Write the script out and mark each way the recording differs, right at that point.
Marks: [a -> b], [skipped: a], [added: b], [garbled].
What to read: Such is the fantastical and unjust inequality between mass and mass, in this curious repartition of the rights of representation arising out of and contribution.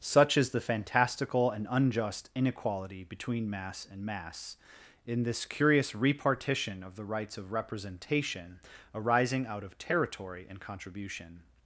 Such is the fantastical and unjust inequality between mass and mass, in this curious repartition of the rights of representation arising out of [added: territory] and contribution.